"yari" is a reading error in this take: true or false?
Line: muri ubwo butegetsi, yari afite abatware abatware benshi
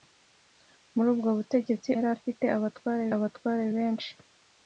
false